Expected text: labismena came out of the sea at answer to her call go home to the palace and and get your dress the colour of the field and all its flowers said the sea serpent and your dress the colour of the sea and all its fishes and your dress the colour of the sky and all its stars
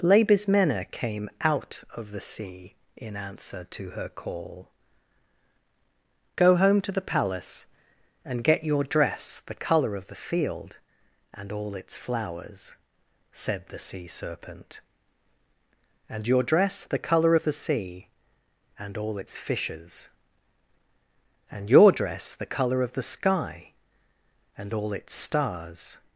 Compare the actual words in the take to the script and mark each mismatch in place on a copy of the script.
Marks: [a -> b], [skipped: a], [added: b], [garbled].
labismena came out of the sea [at -> in] answer to her call go home to the palace and [skipped: and] get your dress the colour of the field and all its flowers said the sea serpent and your dress the colour of the sea and all its fishes and your dress the colour of the sky and all its stars